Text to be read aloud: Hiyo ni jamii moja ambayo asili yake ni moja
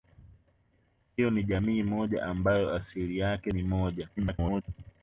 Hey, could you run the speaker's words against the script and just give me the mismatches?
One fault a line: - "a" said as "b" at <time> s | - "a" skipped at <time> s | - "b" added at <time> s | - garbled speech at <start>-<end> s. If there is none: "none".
- garbled speech at 4.2-4.6 s